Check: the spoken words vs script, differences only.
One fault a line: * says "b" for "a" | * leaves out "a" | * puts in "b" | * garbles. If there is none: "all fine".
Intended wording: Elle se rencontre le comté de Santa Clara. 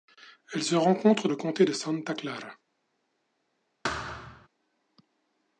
all fine